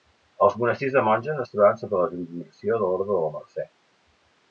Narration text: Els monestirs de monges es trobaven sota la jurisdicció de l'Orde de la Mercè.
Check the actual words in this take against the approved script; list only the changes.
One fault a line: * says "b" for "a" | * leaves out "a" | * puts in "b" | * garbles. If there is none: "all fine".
all fine